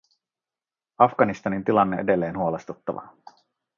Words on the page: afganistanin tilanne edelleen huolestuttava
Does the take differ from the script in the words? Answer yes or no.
no